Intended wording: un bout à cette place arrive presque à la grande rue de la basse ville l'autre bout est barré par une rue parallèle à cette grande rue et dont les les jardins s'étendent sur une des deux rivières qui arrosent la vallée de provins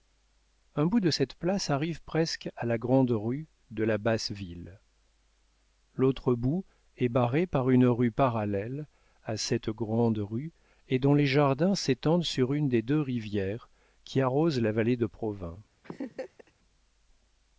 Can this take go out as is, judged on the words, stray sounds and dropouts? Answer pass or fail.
fail